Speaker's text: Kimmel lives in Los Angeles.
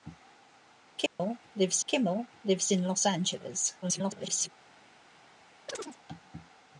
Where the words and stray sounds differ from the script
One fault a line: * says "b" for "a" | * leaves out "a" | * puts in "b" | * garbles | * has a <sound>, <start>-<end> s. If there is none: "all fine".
* has a dropout, 1.1-1.2 s
* puts in "kimmel lives"
* garbles
* has a chirp, 5.7-6.0 s